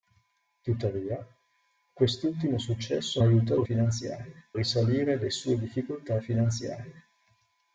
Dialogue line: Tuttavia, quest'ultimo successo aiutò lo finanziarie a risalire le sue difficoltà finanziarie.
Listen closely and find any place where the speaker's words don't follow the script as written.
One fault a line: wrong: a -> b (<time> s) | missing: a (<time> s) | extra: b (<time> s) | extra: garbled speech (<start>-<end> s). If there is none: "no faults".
no faults